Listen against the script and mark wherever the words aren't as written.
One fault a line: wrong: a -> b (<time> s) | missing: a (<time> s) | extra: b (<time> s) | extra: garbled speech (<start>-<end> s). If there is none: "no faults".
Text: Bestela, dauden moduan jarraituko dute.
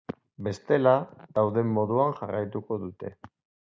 no faults